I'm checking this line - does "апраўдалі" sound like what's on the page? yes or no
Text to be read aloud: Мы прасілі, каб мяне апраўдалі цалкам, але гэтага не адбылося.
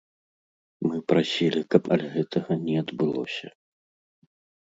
no